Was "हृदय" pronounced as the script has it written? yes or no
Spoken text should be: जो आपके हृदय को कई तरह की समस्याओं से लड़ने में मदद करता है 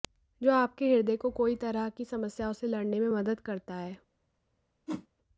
yes